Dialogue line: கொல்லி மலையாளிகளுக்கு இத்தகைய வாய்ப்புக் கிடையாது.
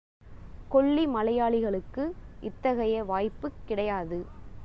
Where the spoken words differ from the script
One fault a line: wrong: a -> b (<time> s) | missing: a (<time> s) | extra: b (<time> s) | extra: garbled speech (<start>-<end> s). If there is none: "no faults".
no faults